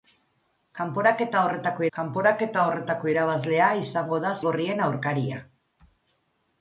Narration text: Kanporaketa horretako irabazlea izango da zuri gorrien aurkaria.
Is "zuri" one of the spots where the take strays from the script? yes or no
yes